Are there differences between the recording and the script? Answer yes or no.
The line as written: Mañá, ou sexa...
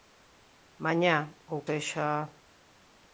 no